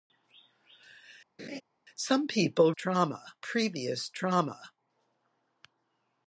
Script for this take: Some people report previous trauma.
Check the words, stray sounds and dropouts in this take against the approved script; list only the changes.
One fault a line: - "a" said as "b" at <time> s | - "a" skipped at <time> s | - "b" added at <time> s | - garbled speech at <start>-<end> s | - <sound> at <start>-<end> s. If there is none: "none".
- laugh at 1.4-1.6 s
- "report" said as "trauma" at 2.7 s